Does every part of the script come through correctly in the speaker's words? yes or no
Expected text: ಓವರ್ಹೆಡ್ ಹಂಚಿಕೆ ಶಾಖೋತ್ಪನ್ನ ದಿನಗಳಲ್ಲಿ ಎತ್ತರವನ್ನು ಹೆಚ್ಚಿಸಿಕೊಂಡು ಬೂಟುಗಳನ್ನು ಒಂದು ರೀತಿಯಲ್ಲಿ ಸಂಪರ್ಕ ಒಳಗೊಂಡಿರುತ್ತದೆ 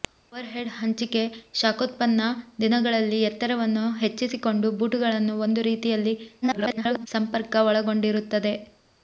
no